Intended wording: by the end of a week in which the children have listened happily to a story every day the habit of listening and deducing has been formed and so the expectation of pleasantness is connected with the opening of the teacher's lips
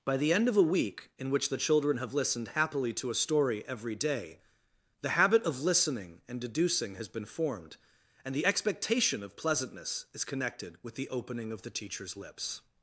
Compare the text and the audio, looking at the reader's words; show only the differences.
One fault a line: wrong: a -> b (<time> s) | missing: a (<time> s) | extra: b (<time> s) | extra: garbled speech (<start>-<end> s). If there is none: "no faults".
missing: so (8.3 s)